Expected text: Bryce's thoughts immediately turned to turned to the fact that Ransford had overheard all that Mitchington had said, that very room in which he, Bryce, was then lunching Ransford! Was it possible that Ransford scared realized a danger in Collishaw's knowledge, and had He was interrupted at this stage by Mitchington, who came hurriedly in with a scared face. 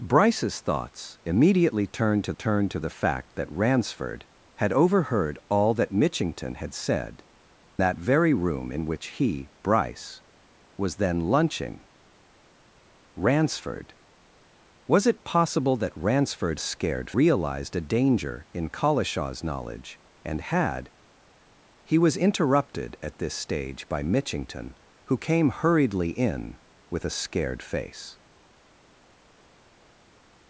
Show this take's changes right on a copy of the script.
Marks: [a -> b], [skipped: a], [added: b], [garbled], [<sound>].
Bryce's thoughts immediately turned to turned to the fact that Ransford had overheard all that Mitchington had said, that very room in which he, Bryce, was then lunching Ransford! Was it possible that Ransford scared realized a danger in Collishaw's knowledge, and had He was interrupted at this stage by Mitchington, who came hurriedly in with a scared face.